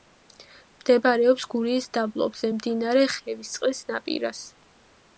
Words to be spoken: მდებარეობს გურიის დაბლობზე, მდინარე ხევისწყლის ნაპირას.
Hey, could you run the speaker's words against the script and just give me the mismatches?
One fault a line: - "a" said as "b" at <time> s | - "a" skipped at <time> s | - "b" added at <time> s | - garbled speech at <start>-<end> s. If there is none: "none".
none